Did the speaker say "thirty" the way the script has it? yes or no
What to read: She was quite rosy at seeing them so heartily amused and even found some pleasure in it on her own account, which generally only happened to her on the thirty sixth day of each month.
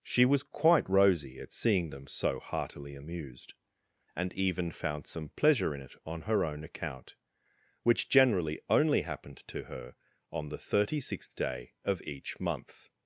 yes